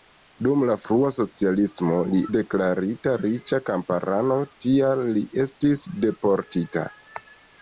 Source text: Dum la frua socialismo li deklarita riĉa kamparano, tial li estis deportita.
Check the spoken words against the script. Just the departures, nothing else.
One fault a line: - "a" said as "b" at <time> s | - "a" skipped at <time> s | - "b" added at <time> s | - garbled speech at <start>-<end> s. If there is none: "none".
none